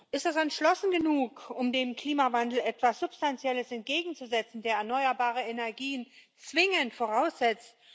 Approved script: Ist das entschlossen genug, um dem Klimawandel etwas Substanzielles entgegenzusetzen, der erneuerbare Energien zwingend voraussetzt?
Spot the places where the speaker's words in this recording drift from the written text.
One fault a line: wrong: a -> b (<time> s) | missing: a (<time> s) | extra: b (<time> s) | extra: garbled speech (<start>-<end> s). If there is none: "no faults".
no faults